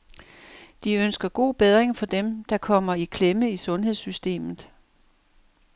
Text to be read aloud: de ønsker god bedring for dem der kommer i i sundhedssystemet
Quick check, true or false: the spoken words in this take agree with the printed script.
false